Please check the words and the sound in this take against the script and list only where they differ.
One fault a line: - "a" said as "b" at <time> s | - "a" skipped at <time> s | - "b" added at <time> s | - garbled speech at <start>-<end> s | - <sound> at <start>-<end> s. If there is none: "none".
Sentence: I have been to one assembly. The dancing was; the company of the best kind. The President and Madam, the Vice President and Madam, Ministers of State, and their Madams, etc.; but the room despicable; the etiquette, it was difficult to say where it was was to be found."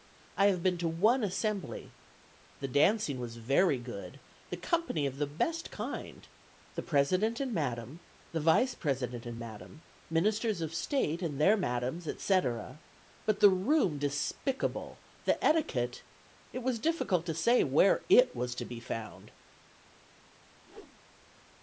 - "very good" added at 3.4 s
- "was" skipped at 18.5 s
- whoosh at 20.6-21.0 s